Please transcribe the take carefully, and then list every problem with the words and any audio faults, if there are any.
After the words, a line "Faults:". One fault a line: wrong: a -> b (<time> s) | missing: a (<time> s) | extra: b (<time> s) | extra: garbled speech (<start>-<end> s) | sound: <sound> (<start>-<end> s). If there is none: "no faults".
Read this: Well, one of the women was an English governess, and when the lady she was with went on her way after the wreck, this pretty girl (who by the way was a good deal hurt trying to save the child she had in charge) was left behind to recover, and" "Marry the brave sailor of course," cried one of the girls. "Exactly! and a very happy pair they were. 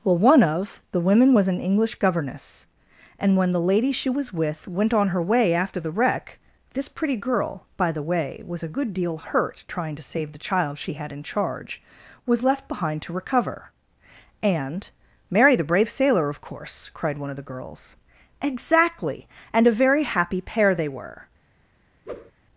Well, one of the women was an English governess, and when the lady she was with went on her way after the wreck, this pretty girl (by the way was a good deal hurt trying to save the child she had in charge) was left behind to recover, and" "Marry the brave sailor of course," cried one of the girls. "Exactly! and a very happy pair they were.
Faults:
missing: who (7.7 s)
sound: whoosh (22.1-22.3 s)